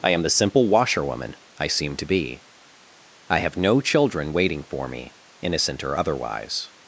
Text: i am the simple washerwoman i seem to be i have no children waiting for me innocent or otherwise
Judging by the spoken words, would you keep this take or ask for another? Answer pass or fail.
pass